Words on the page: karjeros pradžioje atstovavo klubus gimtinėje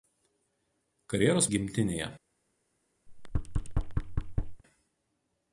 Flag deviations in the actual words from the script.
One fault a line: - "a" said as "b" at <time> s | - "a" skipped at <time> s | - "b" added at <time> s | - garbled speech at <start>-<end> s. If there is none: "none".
- "pradžioje atstovavo klubus" skipped at 1.5 s